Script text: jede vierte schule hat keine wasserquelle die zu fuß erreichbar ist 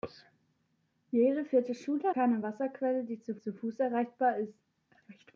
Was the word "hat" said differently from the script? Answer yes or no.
yes